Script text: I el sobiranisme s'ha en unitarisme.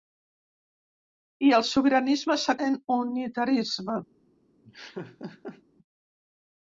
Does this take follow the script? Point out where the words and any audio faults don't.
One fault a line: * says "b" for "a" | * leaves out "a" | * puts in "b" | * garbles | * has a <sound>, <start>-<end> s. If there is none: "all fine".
* has a laugh, 4.6-5.6 s